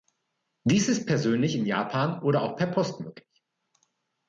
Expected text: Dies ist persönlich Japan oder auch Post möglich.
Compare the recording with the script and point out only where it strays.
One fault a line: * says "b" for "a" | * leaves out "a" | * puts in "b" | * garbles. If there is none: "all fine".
* puts in "in"
* puts in "per"